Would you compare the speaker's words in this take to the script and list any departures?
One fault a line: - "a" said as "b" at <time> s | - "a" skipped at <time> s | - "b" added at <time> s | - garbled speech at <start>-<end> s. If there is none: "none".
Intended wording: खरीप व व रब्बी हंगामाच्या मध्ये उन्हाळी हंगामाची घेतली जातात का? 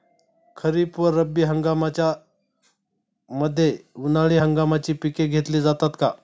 - "व" skipped at 1.1 s
- "पिके" added at 4.9 s